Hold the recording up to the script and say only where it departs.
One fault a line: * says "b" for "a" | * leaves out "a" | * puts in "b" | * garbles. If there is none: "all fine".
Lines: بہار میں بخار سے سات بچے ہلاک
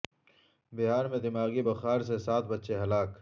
* puts in "دماغی"